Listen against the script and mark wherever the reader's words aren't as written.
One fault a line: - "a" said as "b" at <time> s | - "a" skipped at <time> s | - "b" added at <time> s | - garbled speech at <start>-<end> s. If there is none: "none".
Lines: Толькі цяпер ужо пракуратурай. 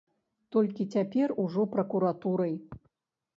none